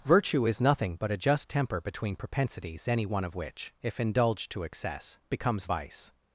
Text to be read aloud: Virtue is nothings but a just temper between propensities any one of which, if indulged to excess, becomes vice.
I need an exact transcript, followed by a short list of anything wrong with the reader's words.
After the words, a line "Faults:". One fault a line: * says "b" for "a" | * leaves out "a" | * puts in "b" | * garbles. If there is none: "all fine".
Virtue is nothing but a just temper between propensities any one of which, if indulged to excess, becomes vice.
Faults:
* says "nothing" for "nothings"